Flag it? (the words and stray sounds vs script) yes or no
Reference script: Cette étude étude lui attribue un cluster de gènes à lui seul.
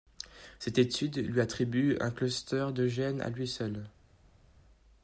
yes